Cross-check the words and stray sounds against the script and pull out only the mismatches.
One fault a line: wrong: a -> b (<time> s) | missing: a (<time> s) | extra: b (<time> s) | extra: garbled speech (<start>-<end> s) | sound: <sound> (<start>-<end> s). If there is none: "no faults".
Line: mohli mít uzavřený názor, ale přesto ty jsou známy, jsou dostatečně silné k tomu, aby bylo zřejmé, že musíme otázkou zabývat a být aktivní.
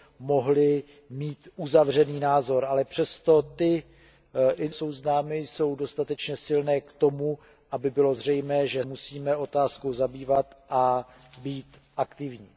no faults